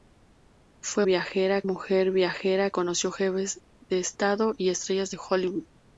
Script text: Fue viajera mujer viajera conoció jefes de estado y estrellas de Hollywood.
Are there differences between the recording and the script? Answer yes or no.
no